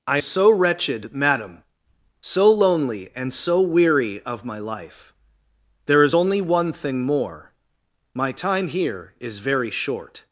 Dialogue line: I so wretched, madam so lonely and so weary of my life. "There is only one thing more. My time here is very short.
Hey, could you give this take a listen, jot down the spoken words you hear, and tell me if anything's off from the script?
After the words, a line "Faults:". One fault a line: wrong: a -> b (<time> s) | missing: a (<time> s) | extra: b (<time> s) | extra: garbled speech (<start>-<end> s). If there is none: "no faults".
I so wretched, madam so lonely and so weary of my life. "There is only one thing more. My time here is very short.
Faults:
no faults